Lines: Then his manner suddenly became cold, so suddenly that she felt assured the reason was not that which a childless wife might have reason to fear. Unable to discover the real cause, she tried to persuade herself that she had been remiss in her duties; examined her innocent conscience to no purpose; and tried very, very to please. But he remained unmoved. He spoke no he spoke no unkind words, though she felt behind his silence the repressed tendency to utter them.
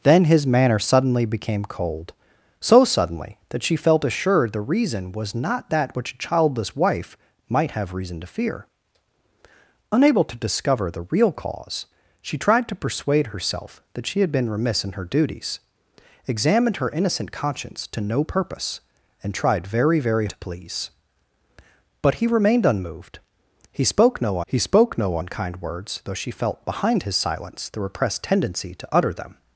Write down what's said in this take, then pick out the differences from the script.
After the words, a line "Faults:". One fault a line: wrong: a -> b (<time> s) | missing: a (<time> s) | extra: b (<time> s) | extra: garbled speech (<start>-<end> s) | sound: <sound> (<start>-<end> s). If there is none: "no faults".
Then his manner suddenly became cold, so suddenly that she felt assured the reason was not that which a childless wife might have reason to fear. Unable to discover the real cause, she tried to persuade herself that she had been remiss in her duties; examined her innocent conscience to no purpose; and tried very, very to please. But he remained unmoved. He spoke no he spoke no unkind words, though she felt behind his silence the repressed tendency to utter them.
Faults:
no faults